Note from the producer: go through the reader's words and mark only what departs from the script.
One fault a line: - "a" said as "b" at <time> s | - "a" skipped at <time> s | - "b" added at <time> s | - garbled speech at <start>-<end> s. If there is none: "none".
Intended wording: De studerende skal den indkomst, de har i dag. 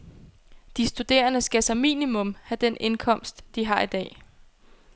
- "som minimum have" added at 1.6 s